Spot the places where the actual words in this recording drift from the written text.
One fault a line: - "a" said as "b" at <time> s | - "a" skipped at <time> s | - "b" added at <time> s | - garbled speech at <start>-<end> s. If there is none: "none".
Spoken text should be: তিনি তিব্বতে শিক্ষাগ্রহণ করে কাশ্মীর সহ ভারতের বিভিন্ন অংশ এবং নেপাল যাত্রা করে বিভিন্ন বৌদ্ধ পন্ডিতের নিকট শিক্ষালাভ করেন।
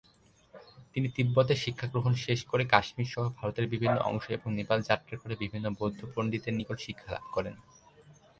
- "শেষ" added at 2.2 s